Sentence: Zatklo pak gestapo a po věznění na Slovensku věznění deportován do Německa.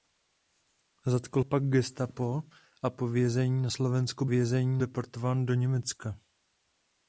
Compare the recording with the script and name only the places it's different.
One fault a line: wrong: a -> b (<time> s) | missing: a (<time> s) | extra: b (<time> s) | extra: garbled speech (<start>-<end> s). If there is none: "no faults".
no faults